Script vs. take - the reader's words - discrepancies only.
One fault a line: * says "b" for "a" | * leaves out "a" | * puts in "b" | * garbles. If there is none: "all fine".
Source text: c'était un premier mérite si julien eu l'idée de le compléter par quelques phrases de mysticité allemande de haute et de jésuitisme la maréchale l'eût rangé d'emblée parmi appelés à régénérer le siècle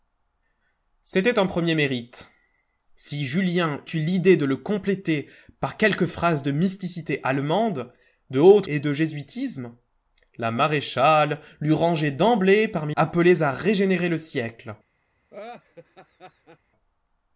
all fine